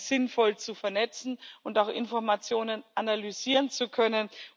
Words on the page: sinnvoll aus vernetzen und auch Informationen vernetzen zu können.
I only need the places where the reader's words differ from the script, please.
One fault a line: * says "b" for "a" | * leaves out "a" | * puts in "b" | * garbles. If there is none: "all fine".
* says "zu" for "aus"
* says "analysieren" for "vernetzen"